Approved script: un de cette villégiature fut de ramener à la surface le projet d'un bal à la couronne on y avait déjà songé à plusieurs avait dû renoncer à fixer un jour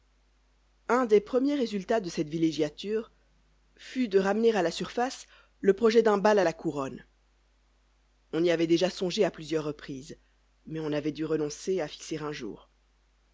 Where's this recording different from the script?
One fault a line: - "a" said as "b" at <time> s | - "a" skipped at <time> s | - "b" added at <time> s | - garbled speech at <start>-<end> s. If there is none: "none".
- "des premiers résultats" added at 1.1 s
- "reprises mais on" added at 9.6 s